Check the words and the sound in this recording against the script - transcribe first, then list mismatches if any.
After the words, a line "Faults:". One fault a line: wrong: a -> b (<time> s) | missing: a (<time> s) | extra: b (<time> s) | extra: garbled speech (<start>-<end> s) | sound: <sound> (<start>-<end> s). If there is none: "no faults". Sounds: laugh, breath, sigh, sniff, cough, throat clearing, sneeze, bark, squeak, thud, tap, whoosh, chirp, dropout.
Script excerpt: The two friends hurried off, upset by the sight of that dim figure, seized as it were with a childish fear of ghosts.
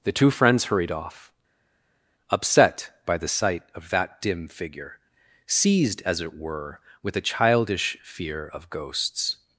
The two friends hurried off, upset by the sight of that dim figure, seized as it were with a childish fear of ghosts.
Faults:
no faults